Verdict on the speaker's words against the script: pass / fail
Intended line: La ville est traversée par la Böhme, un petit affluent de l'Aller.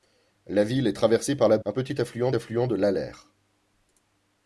fail